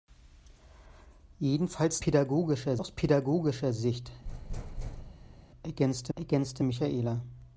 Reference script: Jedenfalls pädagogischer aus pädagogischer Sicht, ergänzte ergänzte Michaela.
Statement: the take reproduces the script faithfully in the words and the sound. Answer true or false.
false